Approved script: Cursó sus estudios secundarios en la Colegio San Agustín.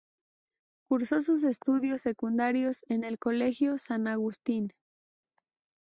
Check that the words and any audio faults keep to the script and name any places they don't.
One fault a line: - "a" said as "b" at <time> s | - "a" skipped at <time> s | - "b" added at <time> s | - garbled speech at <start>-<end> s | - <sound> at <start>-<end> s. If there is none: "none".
- "la" said as "el" at 3.0 s